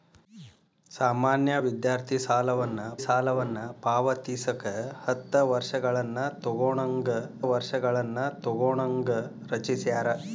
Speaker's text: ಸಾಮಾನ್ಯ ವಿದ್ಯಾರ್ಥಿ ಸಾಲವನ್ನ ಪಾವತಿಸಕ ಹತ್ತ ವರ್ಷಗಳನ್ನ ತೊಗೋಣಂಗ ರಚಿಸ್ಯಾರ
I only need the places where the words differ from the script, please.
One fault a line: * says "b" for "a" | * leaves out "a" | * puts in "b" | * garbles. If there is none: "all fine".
* puts in "ಸಾಲವನ್ನ"
* puts in "ವರ್ಷಗಳನ್ನ ತೊಗೋಣಂಗ"